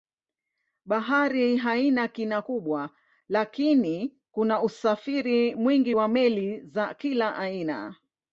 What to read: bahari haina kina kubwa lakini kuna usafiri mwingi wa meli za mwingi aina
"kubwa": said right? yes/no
yes